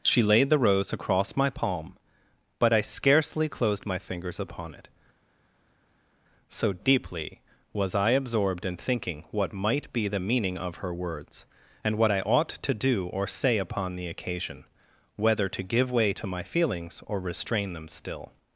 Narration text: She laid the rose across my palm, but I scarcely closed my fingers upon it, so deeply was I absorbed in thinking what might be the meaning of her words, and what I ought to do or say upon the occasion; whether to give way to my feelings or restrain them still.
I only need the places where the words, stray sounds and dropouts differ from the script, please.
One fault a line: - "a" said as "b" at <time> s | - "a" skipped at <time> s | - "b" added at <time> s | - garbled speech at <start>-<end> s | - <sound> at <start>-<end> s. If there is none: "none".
none